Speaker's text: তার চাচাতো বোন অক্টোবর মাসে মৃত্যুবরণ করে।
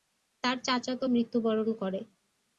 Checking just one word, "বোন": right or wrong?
wrong